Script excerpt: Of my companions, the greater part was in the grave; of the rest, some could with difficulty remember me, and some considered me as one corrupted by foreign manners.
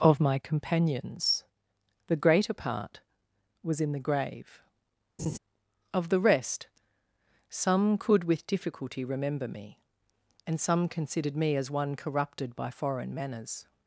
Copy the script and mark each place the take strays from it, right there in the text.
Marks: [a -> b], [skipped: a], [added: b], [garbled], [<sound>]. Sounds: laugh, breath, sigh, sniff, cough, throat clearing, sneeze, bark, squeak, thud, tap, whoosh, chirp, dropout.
Of my companions, the greater part was in the grave; [laugh] of the rest, some could with difficulty remember me, and some considered me as one corrupted by foreign manners.